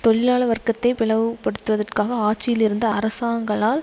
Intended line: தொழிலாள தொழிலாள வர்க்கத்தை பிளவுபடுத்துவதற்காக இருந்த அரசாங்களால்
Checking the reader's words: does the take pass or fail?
fail